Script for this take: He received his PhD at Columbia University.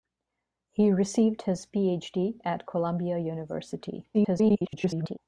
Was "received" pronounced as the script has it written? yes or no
yes